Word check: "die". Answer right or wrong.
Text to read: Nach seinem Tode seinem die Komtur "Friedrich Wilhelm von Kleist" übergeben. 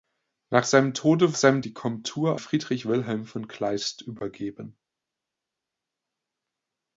right